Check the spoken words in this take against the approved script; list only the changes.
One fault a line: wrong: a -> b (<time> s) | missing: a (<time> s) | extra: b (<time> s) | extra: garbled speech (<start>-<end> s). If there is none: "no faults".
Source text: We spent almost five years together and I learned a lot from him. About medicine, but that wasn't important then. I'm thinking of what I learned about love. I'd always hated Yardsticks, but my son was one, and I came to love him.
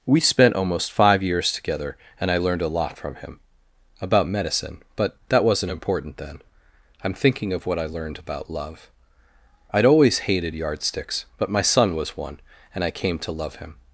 no faults